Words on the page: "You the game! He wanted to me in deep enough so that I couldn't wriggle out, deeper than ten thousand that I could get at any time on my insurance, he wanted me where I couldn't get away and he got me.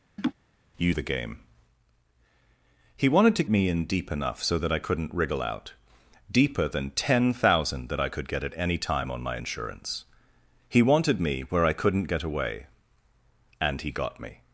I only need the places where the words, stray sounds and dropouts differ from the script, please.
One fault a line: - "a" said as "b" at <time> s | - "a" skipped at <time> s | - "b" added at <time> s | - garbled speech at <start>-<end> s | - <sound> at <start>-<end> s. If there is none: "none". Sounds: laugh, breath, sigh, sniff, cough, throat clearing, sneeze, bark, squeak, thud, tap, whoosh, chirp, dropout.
- laugh at 0.2-0.3 s